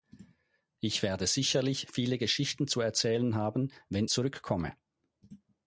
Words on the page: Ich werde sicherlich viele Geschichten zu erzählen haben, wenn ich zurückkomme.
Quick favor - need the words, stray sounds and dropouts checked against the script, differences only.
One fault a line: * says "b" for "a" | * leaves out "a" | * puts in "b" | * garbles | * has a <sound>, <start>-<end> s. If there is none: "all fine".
* leaves out "ich"